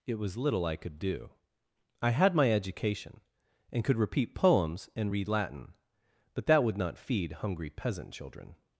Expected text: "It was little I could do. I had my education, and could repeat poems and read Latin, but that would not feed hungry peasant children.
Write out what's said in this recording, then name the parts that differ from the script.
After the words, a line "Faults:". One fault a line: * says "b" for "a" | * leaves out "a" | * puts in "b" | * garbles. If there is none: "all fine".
"It was little I could do. I had my education, and could repeat poems and read Latin, but that would not feed hungry peasant children.
Faults:
all fine